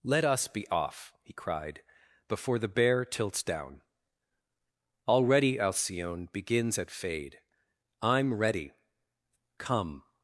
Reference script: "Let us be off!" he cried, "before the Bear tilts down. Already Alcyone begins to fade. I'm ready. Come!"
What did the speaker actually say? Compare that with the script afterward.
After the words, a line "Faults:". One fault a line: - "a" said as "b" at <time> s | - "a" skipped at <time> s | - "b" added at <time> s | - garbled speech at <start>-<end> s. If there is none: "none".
"Let us be off!" he cried, "before the Bear tilts down. Already Alcyone begins at fade. I'm ready. Come!"
Faults:
- "to" said as "at" at 6.8 s